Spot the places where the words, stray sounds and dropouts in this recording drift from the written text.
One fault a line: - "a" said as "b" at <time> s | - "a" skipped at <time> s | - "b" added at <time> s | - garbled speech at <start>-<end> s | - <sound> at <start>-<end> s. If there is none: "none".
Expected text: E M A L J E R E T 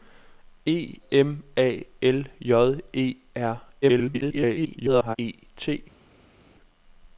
- garbled speech at 3.8-5.2 s